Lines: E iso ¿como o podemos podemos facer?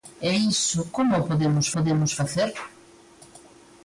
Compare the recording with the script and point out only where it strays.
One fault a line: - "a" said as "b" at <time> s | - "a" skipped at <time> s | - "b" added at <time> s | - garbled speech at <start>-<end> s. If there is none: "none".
none